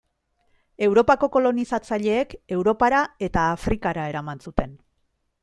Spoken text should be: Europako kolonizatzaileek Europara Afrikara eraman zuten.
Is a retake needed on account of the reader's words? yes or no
yes